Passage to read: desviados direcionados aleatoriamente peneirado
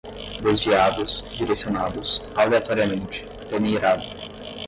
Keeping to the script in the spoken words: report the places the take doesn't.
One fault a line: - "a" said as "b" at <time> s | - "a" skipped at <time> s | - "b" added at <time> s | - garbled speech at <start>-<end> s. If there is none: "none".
none